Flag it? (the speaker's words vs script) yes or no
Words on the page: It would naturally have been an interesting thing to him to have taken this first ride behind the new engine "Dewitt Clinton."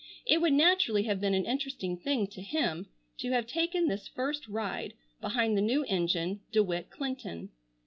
no